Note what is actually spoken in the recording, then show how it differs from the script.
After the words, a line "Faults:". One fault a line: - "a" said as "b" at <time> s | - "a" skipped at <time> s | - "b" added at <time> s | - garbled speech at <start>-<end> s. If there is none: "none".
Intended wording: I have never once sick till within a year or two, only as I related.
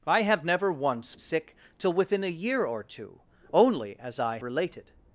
I have never once sick till within a year or two, only as I related.
Faults:
none